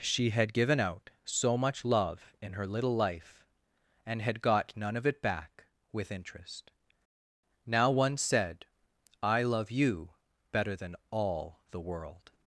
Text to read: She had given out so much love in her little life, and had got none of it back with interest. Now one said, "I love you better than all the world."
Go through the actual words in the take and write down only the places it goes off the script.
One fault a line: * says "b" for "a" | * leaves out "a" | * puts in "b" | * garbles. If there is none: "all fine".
all fine